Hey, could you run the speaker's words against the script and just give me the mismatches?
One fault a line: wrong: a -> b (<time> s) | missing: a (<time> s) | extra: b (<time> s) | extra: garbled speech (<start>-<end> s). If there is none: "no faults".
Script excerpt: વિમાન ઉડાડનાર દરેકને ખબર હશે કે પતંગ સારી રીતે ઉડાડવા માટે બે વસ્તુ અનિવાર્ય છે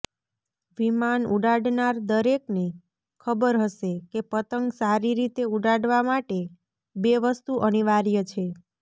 no faults